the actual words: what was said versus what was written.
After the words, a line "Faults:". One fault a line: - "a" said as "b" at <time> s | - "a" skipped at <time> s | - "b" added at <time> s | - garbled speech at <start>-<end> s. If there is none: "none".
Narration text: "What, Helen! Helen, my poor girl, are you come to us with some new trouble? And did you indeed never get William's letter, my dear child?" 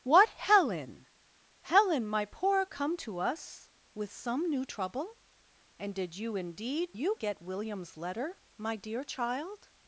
"What, Helen! Helen, my poor come to us with some new trouble? And did you indeed you get William's letter, my dear child?"
Faults:
- "girl are you" skipped at 2.6 s
- "never" said as "you" at 6.9 s